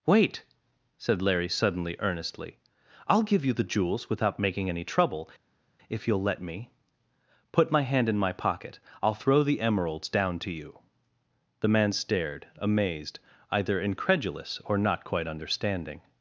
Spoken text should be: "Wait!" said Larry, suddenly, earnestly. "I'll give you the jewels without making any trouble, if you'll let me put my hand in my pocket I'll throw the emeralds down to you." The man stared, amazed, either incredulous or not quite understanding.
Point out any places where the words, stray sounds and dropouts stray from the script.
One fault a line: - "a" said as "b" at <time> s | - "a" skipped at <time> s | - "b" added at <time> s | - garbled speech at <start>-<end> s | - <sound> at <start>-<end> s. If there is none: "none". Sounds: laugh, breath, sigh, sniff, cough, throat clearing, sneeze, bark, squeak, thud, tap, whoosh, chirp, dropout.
none